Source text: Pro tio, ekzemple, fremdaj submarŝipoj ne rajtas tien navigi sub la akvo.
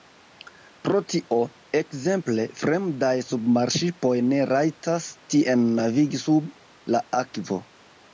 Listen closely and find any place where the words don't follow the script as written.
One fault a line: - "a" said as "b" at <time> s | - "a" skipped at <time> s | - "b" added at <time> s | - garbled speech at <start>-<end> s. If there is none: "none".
none